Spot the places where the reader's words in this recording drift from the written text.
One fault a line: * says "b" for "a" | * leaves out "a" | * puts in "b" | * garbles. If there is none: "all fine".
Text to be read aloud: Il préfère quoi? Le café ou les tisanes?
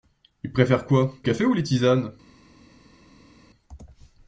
* leaves out "Le"